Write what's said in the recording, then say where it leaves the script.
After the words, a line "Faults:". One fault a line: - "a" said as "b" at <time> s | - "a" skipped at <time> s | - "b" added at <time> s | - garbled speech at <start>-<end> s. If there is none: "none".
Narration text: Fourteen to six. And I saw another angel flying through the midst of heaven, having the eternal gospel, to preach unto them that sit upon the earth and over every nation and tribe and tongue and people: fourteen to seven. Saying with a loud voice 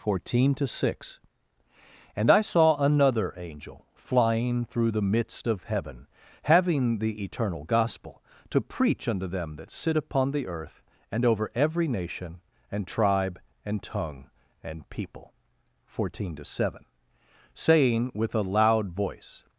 Fourteen to six. And I saw another angel flying through the midst of heaven, having the eternal gospel, to preach unto them that sit upon the earth and over every nation and tribe and tongue and people: fourteen to seven. Saying with a loud voice
Faults:
none